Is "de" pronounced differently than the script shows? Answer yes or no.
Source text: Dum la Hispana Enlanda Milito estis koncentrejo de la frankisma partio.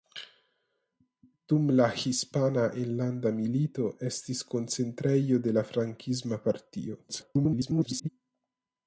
no